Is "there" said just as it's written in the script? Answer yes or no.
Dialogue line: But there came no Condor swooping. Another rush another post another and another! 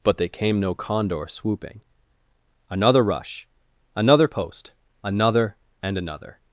no